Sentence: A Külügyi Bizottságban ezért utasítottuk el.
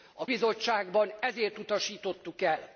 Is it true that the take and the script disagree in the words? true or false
true